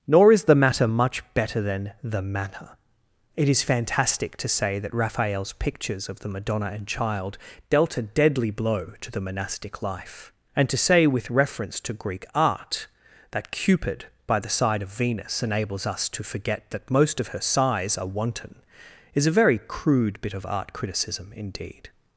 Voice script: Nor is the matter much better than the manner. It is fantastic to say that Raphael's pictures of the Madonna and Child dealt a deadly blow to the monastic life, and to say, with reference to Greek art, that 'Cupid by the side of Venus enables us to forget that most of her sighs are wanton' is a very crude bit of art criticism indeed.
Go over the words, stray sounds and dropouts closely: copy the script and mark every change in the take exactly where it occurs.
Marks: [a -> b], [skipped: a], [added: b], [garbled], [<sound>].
Nor is the matter much better than the manner. It is fantastic to say that Raphael's pictures of the Madonna and Child dealt a deadly blow to the monastic life, and to say, with reference to Greek art, that 'Cupid by the side of Venus enables us to forget that most of her sighs are wanton' is a very crude bit of art criticism indeed.